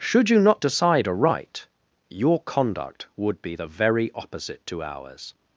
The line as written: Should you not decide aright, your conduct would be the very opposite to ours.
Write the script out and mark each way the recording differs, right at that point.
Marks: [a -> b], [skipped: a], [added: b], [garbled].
Should you not decide aright, your conduct would be the very opposite to ours.